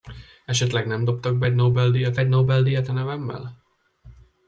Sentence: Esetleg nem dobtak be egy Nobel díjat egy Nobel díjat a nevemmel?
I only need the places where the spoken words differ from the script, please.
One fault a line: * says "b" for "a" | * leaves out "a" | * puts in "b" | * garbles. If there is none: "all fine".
all fine